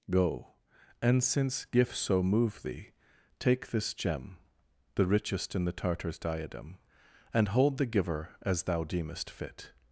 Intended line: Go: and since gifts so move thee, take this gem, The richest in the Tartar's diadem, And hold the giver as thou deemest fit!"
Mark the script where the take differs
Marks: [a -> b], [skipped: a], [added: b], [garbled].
Go: and since gifts so move thee, take this gem, The richest in the Tartar's diadem, And hold the giver as thou deemest fit!"